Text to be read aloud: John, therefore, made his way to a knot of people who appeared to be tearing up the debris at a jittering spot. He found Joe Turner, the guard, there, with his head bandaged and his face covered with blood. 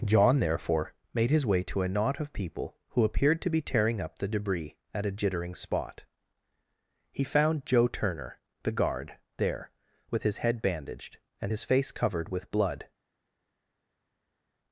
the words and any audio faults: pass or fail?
pass